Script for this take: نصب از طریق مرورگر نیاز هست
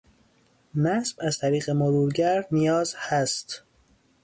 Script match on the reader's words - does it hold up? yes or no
yes